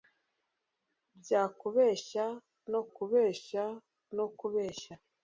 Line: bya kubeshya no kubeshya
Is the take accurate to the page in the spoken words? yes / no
no